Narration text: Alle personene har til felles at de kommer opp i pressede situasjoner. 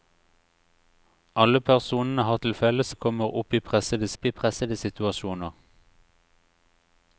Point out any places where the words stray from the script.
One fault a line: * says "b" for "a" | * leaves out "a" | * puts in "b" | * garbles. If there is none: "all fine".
* leaves out "at"
* puts in "opp i pressede"